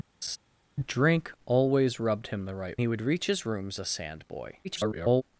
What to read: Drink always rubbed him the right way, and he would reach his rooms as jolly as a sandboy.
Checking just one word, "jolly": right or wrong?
wrong